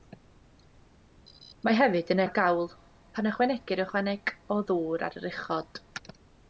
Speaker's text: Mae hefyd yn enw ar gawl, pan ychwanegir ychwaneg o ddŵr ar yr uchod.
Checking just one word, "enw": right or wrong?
wrong